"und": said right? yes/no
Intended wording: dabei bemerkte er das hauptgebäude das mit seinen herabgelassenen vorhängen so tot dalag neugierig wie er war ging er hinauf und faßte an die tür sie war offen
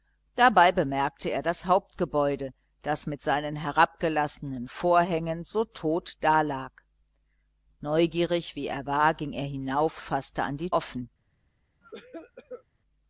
no